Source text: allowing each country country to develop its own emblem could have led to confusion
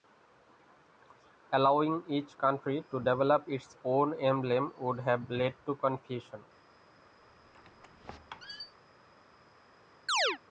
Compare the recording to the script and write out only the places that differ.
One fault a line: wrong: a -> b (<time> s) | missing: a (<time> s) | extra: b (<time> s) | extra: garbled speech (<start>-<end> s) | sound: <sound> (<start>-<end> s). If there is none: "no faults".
missing: country (2.9 s)
wrong: could -> would (4.8 s)
sound: squeak (7.2-8.7 s)
sound: chirp (10.1-10.4 s)